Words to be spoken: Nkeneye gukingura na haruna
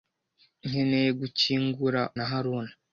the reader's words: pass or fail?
pass